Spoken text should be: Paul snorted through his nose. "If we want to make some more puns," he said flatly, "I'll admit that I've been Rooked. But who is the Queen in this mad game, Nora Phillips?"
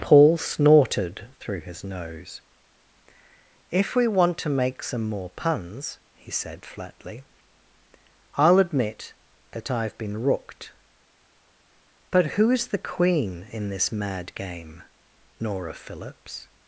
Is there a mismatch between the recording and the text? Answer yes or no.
no